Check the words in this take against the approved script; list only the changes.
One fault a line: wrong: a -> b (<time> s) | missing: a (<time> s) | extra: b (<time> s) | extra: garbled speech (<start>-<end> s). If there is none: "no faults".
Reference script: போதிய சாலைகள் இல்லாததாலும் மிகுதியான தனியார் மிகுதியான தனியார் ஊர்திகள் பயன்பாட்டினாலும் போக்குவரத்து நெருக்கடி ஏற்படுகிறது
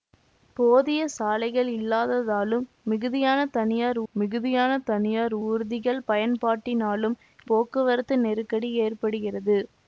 no faults